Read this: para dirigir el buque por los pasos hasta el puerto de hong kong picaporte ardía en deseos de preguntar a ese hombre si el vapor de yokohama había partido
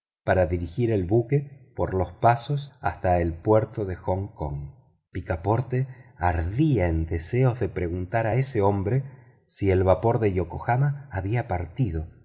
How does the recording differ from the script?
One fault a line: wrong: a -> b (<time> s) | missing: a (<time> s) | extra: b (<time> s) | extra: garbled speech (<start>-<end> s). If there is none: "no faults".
no faults